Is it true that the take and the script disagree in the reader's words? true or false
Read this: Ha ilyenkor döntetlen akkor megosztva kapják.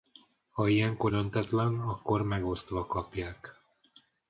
false